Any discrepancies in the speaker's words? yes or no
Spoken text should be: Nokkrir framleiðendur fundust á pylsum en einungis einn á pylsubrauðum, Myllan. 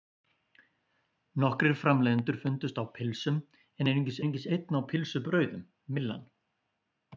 yes